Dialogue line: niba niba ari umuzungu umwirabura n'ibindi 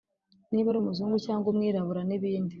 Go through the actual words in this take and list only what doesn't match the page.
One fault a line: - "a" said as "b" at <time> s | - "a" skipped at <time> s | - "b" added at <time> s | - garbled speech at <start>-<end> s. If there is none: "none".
- "niba" skipped at 0.7 s
- "cyangwa" added at 1.2 s